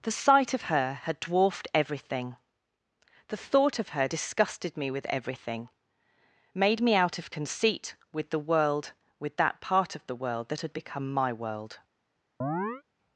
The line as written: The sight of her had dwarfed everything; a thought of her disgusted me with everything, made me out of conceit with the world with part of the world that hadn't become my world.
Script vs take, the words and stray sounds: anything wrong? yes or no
yes